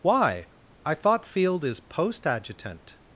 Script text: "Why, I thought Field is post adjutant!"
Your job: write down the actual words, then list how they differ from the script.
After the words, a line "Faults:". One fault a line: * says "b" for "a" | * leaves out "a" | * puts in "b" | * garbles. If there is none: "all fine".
"Why, I thought Field is post adjutant!"
Faults:
all fine